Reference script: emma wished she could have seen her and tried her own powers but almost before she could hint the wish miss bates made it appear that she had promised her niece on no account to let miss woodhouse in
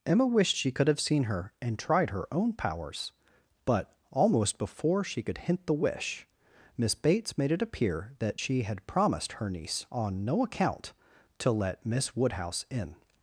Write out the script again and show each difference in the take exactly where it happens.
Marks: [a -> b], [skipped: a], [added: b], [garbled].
emma wished she could have seen her and tried her own powers but almost before she could hint the wish miss bates made it appear that she had promised her niece on no account to let miss woodhouse in